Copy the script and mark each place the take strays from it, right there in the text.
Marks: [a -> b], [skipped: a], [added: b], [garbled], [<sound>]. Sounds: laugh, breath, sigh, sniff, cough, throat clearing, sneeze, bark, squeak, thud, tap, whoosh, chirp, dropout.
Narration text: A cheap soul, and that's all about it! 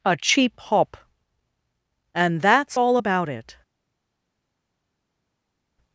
A cheap [soul, -> hop] and that's all about it!